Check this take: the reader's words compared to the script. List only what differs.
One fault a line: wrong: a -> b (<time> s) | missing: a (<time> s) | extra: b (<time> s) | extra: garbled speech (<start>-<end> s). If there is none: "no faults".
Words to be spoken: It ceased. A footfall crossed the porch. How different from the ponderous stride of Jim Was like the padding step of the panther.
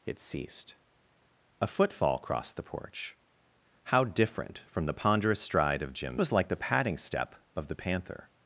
no faults